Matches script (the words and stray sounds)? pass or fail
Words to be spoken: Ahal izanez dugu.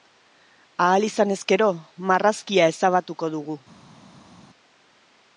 fail